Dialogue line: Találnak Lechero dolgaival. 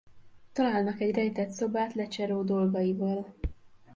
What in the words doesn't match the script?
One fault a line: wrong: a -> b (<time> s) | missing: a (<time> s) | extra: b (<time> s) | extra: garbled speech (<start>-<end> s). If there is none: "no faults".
extra: egy rejtett szobát (1.0 s)